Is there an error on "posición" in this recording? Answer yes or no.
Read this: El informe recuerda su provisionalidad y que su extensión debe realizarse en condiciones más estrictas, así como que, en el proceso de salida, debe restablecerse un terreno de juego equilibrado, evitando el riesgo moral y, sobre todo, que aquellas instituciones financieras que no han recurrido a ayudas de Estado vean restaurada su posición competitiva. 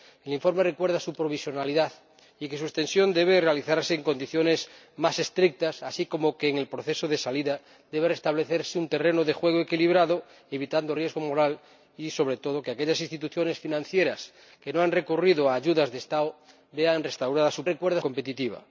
yes